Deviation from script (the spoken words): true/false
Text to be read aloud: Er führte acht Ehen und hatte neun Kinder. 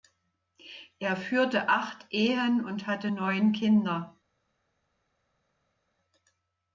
false